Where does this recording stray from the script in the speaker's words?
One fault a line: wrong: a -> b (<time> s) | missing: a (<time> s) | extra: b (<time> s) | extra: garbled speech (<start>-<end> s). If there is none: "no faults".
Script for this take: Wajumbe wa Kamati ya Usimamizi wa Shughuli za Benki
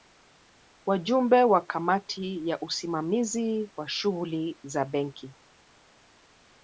no faults